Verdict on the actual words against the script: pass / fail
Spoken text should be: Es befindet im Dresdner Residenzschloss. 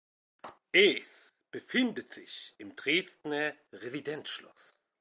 fail